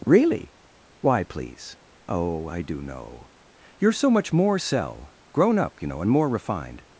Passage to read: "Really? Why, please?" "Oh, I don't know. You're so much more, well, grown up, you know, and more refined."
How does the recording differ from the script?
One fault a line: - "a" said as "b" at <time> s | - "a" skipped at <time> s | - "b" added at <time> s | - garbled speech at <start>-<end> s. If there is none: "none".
- "don't" said as "do" at 2.6 s
- "well" said as "cell" at 4.6 s